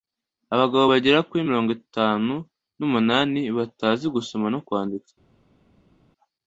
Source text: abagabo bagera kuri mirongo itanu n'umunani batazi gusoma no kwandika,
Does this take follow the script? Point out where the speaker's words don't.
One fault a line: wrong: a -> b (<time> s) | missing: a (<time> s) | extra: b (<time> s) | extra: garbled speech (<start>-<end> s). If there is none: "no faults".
no faults